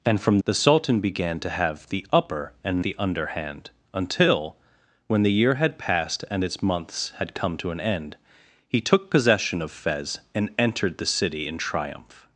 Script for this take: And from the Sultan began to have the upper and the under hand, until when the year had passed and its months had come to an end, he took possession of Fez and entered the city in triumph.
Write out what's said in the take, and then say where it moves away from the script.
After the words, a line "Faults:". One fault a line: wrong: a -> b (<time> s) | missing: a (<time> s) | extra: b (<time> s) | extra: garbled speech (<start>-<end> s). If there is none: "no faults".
And from the Sultan began to have the upper and the under hand, until when the year had passed and its months had come to an end, he took possession of Fez and entered the city in triumph.
Faults:
no faults